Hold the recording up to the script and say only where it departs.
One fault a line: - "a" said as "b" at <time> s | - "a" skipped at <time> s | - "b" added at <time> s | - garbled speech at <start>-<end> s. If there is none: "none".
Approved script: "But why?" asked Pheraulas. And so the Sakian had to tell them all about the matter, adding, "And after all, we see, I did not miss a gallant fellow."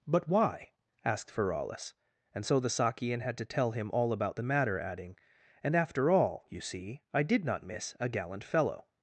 - "them" said as "him" at 3.7 s
- "we" said as "you" at 6.5 s